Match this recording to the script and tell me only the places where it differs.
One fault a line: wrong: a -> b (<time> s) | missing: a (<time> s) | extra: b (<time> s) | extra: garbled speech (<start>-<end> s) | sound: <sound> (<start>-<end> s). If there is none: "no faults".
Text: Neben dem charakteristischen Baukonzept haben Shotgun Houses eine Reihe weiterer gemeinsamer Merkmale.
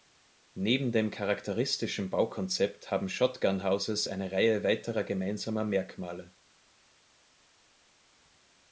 no faults